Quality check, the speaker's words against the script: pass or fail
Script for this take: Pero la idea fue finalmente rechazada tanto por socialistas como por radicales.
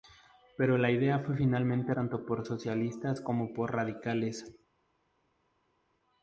fail